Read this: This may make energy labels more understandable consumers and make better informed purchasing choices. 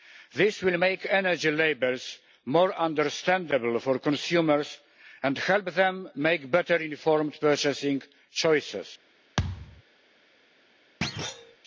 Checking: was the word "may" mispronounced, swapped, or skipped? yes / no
yes